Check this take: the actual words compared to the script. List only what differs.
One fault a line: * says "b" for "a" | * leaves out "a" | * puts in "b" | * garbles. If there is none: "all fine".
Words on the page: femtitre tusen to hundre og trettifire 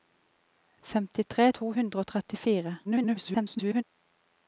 * leaves out "tusen"
* garbles